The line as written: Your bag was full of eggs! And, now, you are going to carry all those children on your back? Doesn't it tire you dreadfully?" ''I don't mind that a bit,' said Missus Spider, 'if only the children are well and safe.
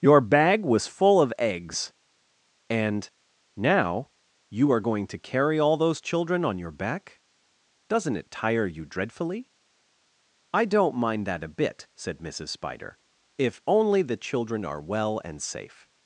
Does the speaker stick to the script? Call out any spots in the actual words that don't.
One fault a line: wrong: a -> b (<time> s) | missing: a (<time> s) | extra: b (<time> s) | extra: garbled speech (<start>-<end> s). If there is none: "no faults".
no faults